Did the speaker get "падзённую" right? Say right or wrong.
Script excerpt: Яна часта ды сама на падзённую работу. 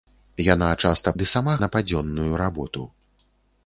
right